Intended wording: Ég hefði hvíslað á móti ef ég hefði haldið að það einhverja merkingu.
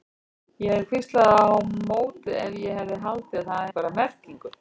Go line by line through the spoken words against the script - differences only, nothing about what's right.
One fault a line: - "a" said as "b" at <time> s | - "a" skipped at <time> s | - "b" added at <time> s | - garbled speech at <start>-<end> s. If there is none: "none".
none